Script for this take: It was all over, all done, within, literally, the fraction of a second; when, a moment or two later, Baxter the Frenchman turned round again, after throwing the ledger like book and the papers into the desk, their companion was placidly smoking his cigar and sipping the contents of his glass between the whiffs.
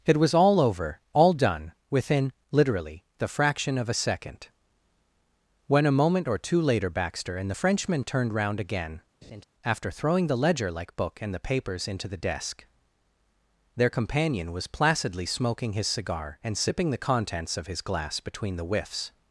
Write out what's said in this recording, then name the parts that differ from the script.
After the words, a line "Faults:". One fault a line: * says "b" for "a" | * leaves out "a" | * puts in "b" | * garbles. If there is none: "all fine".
It was all over, all done, within, literally, the fraction of a second; when, a moment or two later, Baxter and the Frenchman turned round again, after throwing the ledger like book and the papers into the desk, their companion was placidly smoking his cigar and sipping the contents of his glass between the whiffs.
Faults:
* puts in "and"